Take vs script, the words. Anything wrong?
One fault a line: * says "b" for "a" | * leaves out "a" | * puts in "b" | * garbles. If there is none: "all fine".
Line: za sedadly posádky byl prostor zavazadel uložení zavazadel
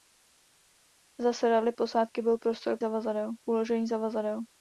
all fine